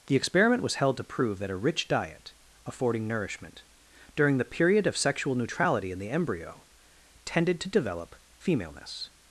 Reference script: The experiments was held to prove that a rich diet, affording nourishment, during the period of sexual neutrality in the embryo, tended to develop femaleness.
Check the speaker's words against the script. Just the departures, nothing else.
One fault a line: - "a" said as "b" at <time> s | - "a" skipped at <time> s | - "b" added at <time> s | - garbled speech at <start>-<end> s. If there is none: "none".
- "experiments" said as "experiment" at 0.1 s